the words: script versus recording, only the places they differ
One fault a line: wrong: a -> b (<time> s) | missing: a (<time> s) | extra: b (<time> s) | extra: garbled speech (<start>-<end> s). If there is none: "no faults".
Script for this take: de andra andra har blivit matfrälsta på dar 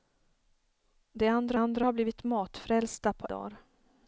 no faults